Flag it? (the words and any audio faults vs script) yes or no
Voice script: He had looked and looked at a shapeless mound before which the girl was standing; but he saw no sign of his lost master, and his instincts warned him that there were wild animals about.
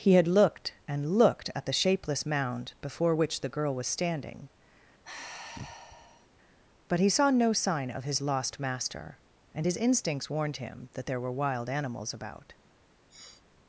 yes